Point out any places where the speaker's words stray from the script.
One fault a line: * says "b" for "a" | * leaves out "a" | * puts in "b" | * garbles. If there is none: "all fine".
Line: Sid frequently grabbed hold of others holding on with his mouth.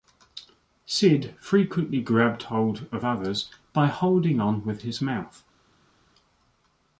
* puts in "by"